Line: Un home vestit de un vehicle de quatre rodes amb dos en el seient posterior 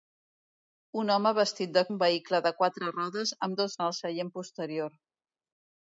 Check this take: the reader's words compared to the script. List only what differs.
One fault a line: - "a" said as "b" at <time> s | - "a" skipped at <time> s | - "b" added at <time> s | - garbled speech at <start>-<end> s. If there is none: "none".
none